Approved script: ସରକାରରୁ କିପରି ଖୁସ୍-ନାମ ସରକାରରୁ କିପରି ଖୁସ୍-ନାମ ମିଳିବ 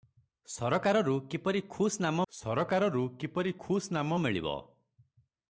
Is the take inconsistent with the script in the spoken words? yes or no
no